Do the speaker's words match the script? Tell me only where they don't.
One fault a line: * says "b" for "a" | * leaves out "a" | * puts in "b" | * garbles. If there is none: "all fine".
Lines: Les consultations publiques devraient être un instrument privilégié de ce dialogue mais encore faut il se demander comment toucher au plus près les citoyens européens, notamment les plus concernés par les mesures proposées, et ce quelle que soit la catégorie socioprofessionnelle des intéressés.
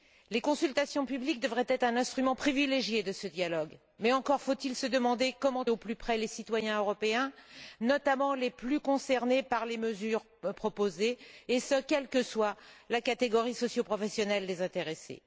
* leaves out "toucher"